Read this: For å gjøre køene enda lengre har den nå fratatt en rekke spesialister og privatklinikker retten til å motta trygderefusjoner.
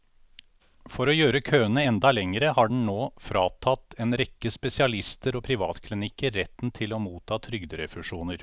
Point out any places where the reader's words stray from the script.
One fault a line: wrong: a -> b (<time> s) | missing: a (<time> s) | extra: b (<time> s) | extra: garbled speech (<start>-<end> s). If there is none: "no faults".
no faults